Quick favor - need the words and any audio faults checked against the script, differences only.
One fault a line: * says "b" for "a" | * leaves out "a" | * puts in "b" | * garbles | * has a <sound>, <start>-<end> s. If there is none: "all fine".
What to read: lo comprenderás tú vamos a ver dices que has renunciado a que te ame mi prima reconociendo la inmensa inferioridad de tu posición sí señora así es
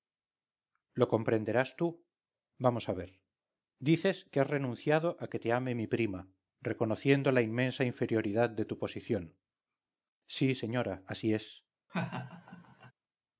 * has a laugh, 11.9-12.9 s